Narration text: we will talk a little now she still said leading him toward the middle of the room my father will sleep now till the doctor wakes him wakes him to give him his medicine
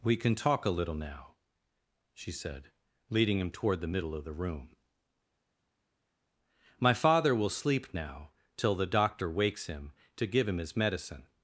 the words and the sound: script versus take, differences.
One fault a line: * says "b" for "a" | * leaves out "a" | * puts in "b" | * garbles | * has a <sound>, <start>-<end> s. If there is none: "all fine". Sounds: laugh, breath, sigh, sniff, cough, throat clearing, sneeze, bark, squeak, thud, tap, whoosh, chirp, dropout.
* says "can" for "will"
* leaves out "still"
* leaves out "wakes him"